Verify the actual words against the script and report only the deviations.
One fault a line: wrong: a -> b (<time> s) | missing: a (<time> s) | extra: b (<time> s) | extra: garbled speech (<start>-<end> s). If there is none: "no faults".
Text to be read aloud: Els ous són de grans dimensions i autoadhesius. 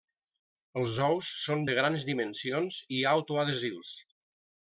no faults